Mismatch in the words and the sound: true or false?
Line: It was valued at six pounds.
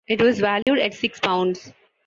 true